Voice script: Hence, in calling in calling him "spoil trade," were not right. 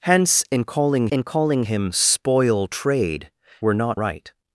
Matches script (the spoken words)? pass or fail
pass